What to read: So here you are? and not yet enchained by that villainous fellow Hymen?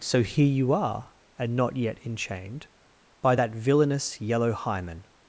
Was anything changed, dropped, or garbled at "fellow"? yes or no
yes